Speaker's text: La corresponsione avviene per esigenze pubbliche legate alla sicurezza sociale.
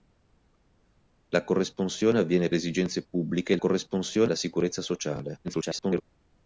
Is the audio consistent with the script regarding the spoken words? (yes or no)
no